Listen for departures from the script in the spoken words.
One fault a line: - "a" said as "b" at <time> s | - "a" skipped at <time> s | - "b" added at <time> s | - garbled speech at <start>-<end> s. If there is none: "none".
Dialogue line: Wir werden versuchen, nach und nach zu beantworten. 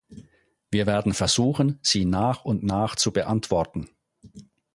- "sie" added at 1.8 s